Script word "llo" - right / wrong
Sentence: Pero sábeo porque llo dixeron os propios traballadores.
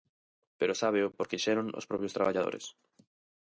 wrong